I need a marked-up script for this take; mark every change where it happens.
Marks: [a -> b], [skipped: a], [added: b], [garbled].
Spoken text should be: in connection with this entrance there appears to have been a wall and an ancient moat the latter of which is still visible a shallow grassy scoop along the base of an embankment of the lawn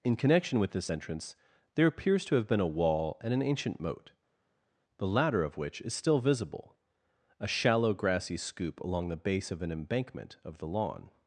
in connection with this entrance there appears to have been a wall and an ancient moat the latter of which is still visible a shallow grassy scoop along the base of an embankment of the lawn